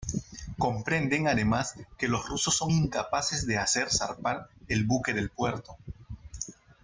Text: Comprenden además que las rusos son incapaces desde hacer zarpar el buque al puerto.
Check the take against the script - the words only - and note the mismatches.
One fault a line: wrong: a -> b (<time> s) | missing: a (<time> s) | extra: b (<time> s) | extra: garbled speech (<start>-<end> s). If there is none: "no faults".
wrong: las -> los (2.1 s)
wrong: desde -> de (3.4 s)
wrong: al -> del (5.1 s)